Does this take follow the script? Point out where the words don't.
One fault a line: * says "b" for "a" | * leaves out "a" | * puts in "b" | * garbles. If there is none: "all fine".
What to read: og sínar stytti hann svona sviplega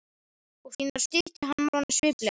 all fine